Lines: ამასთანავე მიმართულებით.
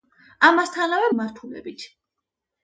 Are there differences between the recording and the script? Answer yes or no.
no